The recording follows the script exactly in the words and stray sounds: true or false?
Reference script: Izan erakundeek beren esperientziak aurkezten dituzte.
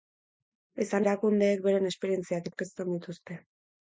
true